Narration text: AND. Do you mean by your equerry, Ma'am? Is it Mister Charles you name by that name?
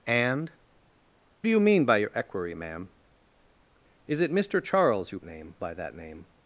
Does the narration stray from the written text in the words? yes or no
no